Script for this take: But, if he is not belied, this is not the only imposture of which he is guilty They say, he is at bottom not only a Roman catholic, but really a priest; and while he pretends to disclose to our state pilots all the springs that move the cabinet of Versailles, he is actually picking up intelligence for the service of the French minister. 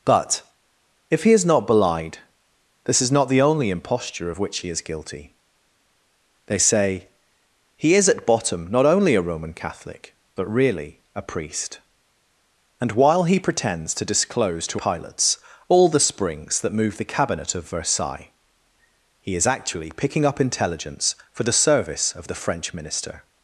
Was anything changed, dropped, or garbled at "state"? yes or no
yes